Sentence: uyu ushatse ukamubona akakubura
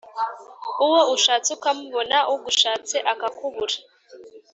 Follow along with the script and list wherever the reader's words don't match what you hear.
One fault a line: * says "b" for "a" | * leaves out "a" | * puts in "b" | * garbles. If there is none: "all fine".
* says "uwo" for "uyu"
* puts in "ugushatse"